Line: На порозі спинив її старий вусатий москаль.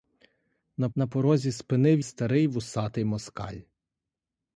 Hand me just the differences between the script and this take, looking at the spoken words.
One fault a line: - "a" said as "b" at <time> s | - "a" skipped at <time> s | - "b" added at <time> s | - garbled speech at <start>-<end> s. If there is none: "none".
- "на" added at 1.0 s
- "її" skipped at 2.0 s